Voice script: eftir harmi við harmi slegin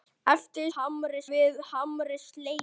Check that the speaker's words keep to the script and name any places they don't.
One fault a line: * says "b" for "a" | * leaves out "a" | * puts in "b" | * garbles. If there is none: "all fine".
all fine